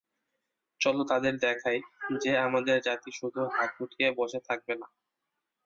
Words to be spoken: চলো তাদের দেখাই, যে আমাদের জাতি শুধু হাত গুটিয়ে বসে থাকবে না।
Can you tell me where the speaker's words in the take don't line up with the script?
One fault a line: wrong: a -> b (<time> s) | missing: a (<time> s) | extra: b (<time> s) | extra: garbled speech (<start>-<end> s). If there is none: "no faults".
no faults